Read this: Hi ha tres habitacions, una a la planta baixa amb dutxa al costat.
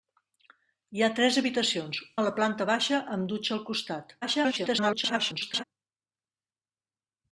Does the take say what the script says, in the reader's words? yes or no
no